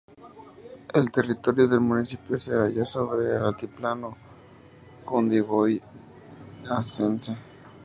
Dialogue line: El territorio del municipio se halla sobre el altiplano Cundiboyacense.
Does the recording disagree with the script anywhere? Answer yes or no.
no